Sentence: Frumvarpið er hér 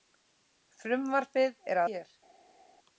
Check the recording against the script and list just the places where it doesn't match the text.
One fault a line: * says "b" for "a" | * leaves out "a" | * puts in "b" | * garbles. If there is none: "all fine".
all fine